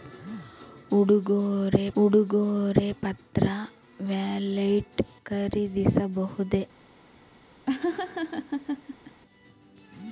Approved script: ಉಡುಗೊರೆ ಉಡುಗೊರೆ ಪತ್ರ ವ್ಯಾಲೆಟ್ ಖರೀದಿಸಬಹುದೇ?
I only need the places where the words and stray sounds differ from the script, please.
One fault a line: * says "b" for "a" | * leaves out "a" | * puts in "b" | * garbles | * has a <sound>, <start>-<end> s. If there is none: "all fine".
* has a laugh, 7.7-9.2 s